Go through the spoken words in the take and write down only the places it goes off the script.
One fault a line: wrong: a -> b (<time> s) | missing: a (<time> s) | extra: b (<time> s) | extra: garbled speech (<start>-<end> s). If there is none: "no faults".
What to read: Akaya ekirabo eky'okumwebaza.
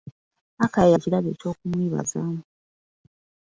no faults